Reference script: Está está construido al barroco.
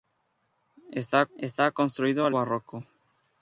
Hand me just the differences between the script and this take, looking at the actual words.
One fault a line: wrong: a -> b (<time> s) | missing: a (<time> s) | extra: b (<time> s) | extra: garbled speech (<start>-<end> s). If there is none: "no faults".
no faults